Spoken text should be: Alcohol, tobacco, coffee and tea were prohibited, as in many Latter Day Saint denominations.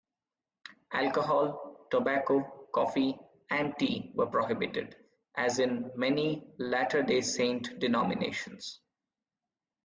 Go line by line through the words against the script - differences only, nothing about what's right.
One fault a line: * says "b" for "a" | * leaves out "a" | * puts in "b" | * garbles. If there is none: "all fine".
all fine